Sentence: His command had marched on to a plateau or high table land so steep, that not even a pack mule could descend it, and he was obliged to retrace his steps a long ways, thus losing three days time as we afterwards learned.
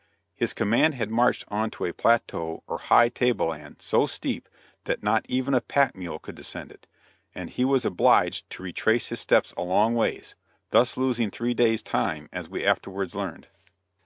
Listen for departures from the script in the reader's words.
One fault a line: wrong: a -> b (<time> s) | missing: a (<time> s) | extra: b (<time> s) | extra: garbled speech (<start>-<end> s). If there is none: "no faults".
no faults